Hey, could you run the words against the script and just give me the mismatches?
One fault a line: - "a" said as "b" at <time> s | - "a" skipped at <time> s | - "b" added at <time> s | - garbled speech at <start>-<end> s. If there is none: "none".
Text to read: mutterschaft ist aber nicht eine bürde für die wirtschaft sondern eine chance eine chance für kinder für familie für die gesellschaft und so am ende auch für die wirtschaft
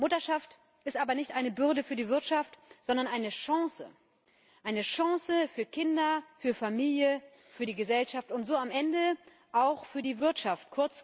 none